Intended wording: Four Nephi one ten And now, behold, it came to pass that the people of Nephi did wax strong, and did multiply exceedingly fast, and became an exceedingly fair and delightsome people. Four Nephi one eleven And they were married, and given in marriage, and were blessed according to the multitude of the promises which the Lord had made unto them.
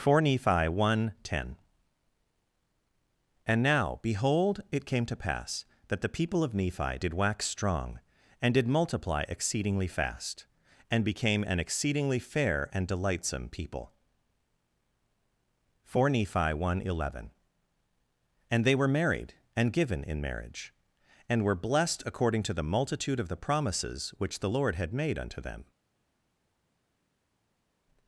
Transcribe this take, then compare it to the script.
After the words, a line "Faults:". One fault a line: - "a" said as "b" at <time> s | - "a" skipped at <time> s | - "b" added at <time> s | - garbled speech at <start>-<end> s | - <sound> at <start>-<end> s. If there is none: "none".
Four Nephi one ten And now, behold, it came to pass that the people of Nephi did wax strong, and did multiply exceedingly fast, and became an exceedingly fair and delightsome people. Four Nephi one eleven And they were married, and given in marriage, and were blessed according to the multitude of the promises which the Lord had made unto them.
Faults:
none